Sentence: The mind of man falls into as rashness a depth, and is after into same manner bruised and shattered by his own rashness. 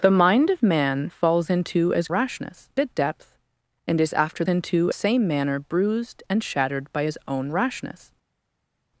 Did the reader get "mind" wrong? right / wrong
right